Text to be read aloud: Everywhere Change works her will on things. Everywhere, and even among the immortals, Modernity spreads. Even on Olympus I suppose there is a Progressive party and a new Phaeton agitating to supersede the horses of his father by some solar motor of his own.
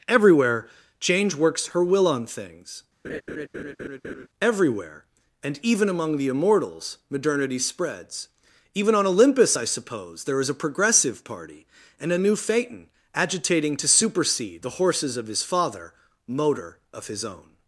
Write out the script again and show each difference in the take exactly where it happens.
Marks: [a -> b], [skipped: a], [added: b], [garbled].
Everywhere Change works her will on things. Everywhere, and even among the immortals, Modernity spreads. Even on Olympus I suppose there is a Progressive party and a new Phaeton agitating to supersede the horses of his father [skipped: by some solar] motor of his own.